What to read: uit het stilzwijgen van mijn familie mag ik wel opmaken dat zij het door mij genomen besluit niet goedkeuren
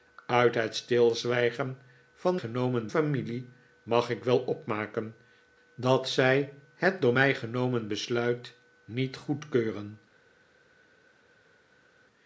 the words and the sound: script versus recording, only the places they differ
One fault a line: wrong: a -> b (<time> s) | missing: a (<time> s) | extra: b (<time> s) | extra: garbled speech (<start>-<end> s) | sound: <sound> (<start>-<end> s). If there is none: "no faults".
wrong: mijn -> genomen (2.3 s)